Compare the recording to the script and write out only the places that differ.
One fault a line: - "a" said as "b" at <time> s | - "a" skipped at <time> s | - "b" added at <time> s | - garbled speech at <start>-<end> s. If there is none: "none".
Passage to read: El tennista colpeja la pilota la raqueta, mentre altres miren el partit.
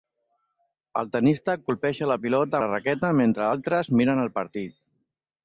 none